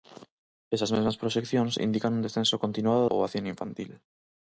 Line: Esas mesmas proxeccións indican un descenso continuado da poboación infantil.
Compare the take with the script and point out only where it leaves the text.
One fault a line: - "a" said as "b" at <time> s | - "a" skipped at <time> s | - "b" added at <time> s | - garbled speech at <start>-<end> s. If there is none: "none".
- "da" skipped at 3.0 s